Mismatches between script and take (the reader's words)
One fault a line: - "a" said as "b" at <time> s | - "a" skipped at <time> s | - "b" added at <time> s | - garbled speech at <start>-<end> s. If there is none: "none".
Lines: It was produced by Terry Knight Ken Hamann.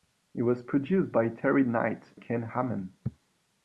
none